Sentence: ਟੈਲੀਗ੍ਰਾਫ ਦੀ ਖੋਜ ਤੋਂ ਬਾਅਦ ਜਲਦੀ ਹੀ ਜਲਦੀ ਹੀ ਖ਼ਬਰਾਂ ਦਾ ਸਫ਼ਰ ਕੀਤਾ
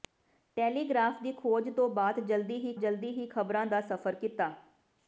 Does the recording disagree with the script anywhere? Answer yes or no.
no